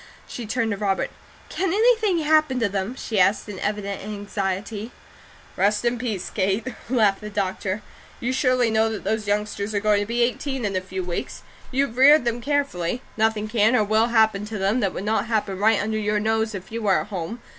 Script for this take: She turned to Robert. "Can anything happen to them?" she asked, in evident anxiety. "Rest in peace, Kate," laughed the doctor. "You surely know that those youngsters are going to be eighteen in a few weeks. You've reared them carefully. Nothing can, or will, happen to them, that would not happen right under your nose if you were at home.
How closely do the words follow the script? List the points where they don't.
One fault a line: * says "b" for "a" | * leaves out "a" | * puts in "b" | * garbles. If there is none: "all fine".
all fine